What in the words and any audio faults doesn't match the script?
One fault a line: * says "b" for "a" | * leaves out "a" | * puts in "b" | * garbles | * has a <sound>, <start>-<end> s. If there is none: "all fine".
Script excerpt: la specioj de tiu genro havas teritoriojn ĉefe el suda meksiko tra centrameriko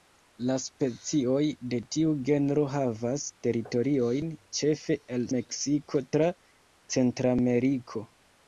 * leaves out "suda"